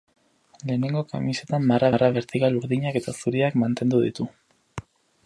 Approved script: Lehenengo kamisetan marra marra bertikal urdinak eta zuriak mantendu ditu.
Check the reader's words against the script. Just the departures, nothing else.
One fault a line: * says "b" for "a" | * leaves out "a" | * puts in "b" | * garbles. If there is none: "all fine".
all fine